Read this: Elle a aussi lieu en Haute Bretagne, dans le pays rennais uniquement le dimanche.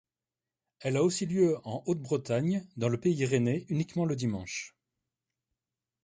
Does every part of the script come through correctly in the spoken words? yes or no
yes